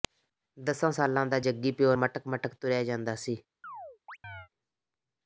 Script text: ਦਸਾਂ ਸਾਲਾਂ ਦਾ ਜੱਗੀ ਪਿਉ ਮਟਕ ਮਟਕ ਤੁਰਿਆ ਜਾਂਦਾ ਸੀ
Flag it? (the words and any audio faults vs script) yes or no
yes